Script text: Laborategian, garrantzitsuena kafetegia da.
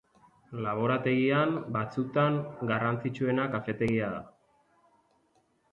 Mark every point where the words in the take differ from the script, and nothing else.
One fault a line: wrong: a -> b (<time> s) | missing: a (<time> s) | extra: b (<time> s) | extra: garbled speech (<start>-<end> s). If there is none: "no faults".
extra: batzutan (1.8 s)